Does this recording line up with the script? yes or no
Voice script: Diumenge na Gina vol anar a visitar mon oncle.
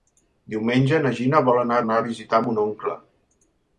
no